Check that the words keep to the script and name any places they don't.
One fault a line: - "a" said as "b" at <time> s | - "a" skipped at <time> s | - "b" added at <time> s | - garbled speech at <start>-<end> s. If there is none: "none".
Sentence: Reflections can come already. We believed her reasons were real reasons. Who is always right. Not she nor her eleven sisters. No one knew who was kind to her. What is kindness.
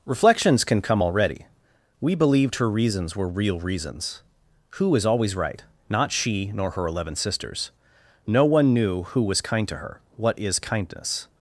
none